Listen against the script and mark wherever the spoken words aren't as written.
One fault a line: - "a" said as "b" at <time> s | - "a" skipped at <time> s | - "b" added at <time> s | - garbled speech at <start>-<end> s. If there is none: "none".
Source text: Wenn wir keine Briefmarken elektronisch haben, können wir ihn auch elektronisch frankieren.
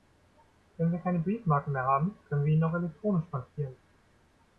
- "elektronisch" said as "mehr" at 1.7 s